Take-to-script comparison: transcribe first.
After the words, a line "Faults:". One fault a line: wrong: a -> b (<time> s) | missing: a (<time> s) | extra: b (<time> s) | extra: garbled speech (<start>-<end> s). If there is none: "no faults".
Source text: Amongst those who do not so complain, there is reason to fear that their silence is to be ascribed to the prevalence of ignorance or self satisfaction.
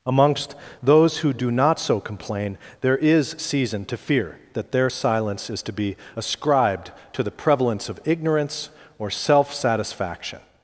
Amongst those who do not so complain, there is season to fear that their silence is to be ascribed to the prevalence of ignorance or self satisfaction.
Faults:
wrong: reason -> season (3.4 s)